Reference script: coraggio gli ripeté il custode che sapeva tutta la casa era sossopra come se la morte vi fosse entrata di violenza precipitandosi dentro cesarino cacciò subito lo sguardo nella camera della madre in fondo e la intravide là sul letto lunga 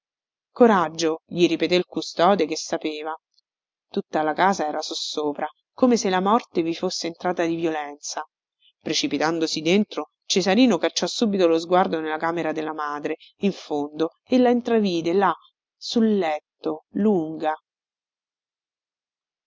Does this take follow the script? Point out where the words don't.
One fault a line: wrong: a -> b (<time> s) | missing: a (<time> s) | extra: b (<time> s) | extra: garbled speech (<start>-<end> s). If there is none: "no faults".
no faults